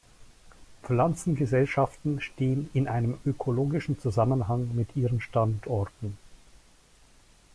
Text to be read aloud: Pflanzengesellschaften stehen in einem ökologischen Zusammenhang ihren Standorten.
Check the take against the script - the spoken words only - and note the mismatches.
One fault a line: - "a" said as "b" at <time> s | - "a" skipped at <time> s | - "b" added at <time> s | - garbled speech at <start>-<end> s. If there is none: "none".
- "mit" added at 4.7 s